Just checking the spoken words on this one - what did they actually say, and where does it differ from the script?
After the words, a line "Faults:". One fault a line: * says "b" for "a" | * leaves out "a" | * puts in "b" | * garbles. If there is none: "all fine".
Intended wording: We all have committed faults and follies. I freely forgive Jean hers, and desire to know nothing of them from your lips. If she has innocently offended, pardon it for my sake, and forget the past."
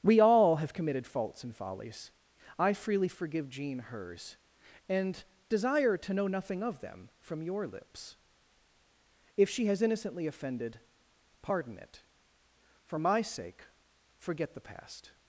We all have committed faults and follies. I freely forgive Jean hers, and desire to know nothing of them from your lips. If she has innocently offended, pardon it for my sake, forget the past."
Faults:
* leaves out "and"